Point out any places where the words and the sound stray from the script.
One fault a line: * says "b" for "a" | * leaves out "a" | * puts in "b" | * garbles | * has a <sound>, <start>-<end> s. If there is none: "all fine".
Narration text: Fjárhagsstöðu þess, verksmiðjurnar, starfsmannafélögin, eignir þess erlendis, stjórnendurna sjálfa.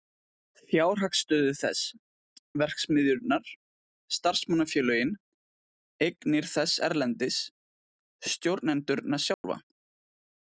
* has a dropout, 9.3-9.4 s